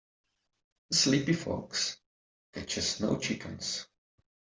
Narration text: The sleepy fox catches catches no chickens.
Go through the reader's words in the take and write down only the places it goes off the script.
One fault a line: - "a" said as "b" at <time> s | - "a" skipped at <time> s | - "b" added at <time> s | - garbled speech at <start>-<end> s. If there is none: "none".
- "catches" skipped at 3.0 s